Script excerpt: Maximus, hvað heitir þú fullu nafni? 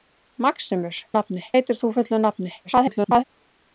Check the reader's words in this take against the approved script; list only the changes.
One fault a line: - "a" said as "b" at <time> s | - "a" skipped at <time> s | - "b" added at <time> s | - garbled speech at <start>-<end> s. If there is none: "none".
- "hvað" said as "nafni" at 1.2 s
- garbled speech at 2.6-3.2 s